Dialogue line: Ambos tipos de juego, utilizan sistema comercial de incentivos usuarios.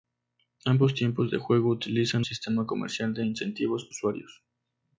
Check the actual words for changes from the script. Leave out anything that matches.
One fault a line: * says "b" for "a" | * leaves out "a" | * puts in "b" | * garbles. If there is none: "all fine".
all fine